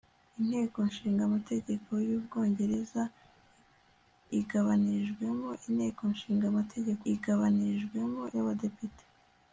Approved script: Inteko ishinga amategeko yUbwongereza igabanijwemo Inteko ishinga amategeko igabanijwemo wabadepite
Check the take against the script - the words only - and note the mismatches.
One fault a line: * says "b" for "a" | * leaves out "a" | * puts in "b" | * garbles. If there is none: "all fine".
all fine